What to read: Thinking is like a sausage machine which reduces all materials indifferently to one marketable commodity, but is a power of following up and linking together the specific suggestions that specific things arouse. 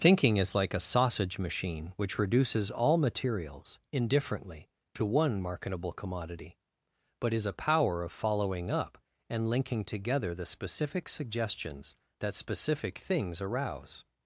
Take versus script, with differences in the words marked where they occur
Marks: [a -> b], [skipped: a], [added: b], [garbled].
Thinking is like a sausage machine which reduces all materials indifferently to one marketable commodity, but is a power of following up and linking together the specific suggestions that specific things arouse.